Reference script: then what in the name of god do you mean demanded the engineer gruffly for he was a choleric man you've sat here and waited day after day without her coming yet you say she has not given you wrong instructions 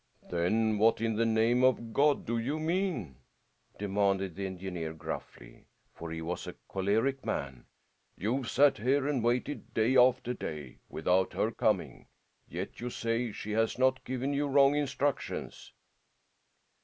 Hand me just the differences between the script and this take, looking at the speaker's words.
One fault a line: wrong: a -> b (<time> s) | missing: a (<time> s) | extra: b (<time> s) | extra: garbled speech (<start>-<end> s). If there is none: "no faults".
no faults